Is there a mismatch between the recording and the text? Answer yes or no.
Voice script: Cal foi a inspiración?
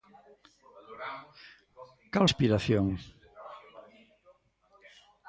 yes